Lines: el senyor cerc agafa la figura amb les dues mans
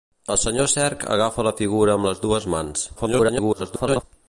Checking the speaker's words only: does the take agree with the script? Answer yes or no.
no